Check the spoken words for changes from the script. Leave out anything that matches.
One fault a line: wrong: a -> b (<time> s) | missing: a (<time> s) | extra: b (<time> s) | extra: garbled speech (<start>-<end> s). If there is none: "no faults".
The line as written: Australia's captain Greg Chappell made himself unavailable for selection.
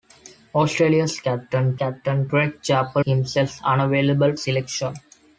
extra: captain (1.7 s)
missing: made (3.0 s)
missing: for (4.3 s)